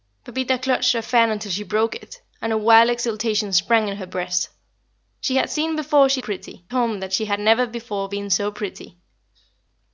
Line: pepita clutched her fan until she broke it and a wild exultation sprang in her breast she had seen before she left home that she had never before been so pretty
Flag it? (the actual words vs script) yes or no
yes